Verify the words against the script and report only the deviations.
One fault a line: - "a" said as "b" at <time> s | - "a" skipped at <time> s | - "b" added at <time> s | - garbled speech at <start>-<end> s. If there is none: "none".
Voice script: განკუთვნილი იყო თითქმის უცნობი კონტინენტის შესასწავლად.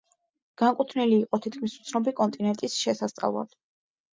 none